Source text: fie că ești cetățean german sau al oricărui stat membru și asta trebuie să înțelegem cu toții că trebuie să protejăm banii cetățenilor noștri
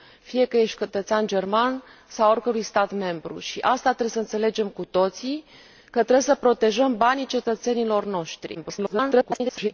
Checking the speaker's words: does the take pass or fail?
fail